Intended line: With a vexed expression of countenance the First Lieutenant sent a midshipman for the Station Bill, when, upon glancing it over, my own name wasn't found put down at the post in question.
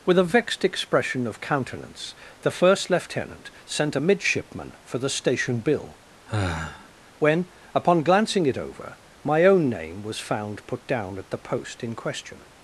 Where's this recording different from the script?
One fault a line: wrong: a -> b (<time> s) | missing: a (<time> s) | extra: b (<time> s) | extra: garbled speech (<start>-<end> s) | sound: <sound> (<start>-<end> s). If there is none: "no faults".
sound: sigh (6.3-6.9 s)
wrong: wasn't -> was (10.0 s)